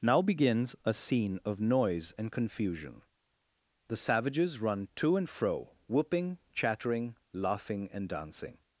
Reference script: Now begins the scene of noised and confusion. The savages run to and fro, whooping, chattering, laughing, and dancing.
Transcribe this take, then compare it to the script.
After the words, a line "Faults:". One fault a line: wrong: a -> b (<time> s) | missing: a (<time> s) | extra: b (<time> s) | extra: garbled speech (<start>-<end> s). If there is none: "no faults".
Now begins a scene of noise and confusion. The savages run to and fro, whooping, chattering, laughing, and dancing.
Faults:
wrong: the -> a (0.8 s)
wrong: noised -> noise (1.6 s)